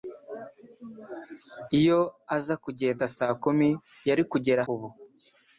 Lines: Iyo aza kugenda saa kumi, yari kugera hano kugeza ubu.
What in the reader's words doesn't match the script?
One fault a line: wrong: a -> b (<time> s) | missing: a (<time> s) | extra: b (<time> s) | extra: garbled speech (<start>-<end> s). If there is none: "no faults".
missing: hano kugeza (4.6 s)